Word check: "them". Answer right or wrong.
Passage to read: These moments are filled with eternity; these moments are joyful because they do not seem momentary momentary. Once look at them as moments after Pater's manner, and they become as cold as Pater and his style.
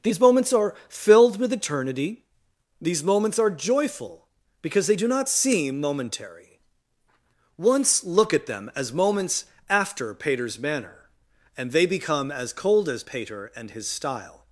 right